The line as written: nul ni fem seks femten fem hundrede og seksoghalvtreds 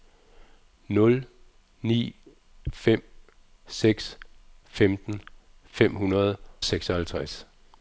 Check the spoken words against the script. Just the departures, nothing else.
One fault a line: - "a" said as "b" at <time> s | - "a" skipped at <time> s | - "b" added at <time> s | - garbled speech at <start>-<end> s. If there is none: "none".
- "og" skipped at 6.4 s